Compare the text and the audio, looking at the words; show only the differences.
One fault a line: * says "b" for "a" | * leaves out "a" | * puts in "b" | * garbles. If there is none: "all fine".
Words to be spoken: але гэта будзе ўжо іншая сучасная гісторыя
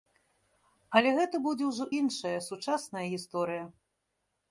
all fine